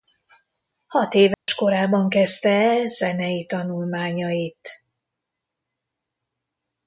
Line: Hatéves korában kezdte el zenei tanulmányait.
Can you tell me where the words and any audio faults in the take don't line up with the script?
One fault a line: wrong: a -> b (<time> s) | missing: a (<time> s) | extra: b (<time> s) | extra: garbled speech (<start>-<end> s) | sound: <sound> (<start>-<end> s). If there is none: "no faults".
sound: dropout (1.3-1.5 s)